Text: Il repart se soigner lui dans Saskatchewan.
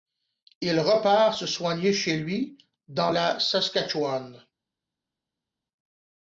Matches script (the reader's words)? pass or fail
fail